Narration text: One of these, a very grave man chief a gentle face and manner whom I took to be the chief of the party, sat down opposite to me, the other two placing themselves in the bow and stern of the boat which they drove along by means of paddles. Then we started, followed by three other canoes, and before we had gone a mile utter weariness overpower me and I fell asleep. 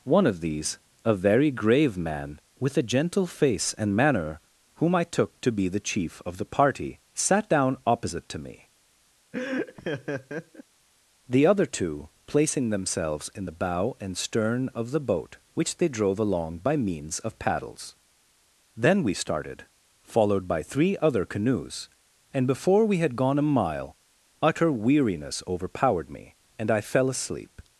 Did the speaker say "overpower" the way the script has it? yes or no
no